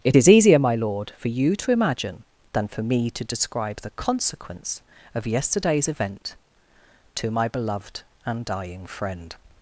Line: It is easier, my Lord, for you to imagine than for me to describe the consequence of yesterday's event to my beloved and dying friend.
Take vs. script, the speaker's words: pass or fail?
pass